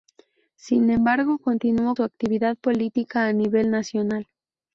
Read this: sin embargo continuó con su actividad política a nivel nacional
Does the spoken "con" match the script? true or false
false